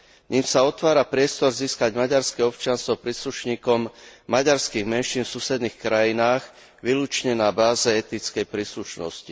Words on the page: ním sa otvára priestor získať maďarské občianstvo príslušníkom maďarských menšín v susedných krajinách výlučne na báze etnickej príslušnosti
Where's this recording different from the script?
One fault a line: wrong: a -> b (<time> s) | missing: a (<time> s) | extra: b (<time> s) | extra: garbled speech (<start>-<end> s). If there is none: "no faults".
no faults